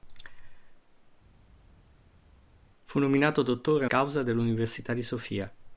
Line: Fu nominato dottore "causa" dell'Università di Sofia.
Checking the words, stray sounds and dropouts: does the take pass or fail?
pass